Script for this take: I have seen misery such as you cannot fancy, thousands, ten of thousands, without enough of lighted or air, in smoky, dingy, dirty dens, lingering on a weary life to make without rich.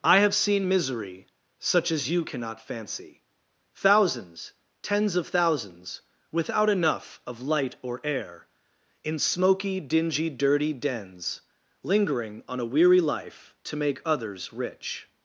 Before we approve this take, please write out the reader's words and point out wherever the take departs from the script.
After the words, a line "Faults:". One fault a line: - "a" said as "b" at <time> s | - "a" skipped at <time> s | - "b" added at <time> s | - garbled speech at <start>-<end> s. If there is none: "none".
I have seen misery such as you cannot fancy, thousands, tens of thousands, without enough of light or air, in smoky, dingy, dirty dens, lingering on a weary life to make others rich.
Faults:
- "ten" said as "tens" at 4.8 s
- "lighted" said as "light" at 7.4 s
- "without" said as "others" at 14.0 s